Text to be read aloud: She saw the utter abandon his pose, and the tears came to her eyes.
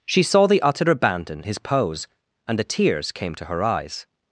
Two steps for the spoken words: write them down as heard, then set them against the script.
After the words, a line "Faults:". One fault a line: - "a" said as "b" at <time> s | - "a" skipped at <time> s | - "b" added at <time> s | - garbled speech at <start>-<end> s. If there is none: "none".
She saw the utter abandon his pose, and the tears came to her eyes.
Faults:
none